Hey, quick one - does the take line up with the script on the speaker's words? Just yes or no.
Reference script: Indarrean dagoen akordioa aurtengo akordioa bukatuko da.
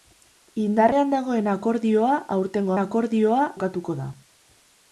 yes